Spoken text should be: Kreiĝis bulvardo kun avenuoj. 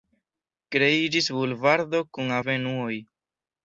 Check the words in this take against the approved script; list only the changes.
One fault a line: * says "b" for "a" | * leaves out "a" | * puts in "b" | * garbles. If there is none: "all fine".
all fine